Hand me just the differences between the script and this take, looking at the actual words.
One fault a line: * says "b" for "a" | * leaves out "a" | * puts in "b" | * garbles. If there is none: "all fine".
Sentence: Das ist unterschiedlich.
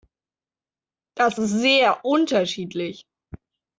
* puts in "sehr"